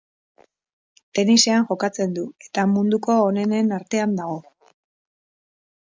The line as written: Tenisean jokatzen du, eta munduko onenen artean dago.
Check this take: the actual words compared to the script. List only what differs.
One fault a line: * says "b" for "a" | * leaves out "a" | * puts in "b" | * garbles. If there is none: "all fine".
all fine